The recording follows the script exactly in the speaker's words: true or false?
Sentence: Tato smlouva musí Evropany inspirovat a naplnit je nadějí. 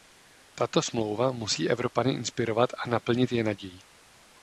true